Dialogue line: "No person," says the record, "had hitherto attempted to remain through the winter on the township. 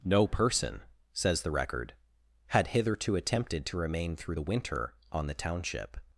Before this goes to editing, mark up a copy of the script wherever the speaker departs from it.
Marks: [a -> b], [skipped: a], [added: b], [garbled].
"No person," says the record, "had hitherto attempted to remain through the winter on the township.